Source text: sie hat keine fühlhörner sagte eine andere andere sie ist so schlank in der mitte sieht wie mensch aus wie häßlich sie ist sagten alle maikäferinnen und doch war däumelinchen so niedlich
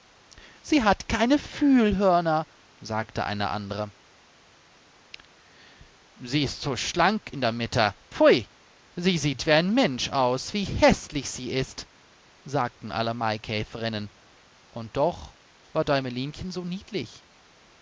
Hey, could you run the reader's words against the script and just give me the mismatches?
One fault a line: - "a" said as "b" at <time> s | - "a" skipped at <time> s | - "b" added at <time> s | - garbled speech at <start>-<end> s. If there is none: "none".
- "andere" skipped at 3.9 s
- "pfui sie" added at 8.1 s
- "ein" added at 9.5 s